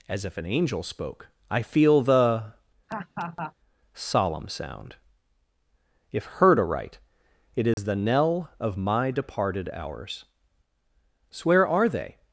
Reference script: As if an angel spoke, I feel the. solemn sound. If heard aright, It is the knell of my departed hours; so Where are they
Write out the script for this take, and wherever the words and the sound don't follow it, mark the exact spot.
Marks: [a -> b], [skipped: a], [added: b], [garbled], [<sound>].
As if an angel spoke, I feel the. [laugh] solemn sound. If heard aright, It is [dropout] the knell of my departed hours; so Where are they